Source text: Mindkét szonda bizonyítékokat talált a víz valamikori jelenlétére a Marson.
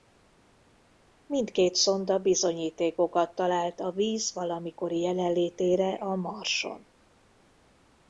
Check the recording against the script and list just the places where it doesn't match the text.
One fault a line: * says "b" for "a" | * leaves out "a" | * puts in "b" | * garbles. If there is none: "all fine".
all fine